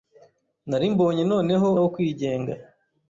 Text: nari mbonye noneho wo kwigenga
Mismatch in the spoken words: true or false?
false